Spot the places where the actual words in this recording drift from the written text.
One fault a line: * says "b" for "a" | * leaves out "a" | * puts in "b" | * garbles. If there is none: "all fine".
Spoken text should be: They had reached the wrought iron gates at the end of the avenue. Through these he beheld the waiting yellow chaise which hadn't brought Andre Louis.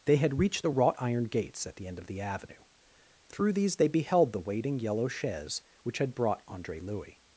* says "they" for "he"
* says "had" for "hadn't"